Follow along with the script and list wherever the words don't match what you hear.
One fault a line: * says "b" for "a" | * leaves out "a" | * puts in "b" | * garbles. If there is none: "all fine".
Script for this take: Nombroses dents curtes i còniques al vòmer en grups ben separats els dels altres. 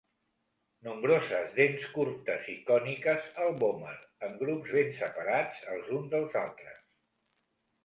* puts in "uns"